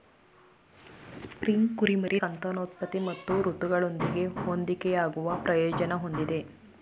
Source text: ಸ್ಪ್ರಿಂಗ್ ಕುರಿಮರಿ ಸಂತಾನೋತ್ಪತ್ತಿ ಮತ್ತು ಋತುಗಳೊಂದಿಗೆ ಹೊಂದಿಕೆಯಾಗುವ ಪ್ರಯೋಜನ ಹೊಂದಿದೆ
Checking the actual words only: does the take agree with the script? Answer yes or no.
yes